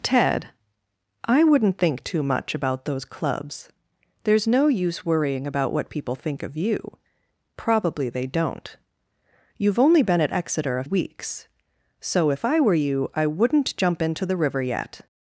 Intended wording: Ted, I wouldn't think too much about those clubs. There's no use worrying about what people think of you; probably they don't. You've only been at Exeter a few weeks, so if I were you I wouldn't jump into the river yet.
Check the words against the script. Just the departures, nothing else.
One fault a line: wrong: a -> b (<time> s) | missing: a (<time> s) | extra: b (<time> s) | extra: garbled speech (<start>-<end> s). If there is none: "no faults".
missing: few (10.8 s)